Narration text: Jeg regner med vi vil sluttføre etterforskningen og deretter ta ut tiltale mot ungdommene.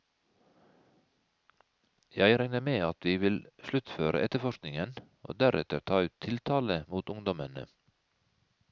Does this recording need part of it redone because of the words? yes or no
yes